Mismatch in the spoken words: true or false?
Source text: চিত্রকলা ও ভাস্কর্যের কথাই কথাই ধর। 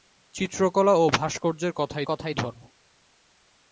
false